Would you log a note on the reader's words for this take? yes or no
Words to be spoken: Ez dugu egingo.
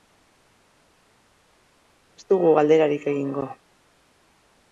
yes